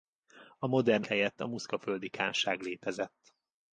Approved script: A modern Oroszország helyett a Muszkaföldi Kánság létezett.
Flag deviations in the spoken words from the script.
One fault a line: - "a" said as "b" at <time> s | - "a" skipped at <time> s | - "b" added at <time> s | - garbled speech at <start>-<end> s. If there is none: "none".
- "Oroszország" skipped at 1.0 s